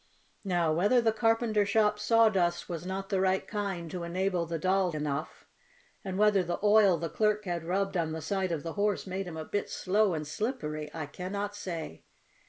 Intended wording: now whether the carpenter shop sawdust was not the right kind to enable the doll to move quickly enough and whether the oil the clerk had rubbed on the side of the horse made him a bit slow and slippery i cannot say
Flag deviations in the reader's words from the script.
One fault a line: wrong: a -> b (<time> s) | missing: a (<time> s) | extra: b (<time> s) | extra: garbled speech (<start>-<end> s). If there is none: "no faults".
missing: to move quickly (4.9 s)